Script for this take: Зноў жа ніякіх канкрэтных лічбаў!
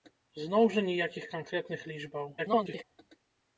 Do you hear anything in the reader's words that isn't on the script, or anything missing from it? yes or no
yes